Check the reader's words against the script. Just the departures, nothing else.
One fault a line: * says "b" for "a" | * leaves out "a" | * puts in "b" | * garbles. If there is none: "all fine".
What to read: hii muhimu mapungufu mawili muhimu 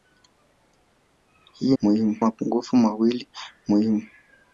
all fine